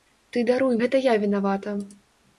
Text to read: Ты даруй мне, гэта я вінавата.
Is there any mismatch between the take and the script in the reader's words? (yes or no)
yes